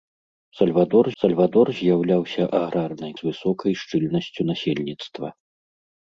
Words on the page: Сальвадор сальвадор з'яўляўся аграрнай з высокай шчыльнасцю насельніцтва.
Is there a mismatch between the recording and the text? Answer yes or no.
no